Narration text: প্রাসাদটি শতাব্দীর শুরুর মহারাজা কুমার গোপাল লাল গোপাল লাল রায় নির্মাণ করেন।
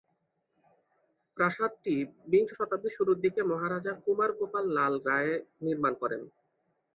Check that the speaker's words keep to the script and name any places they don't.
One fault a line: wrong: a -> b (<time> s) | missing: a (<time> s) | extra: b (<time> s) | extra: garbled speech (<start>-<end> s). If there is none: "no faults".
extra: বিংশ (2.3 s)
extra: দিকে (3.2 s)
missing: গোপাল লাল (4.9 s)